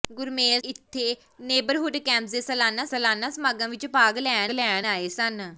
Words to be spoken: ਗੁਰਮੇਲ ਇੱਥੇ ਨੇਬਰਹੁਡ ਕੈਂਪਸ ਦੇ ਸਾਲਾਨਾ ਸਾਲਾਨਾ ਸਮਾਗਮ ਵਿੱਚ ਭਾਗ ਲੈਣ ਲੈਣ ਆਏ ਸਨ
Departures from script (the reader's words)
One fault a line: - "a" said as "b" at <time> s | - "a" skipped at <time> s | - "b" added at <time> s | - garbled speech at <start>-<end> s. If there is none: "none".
none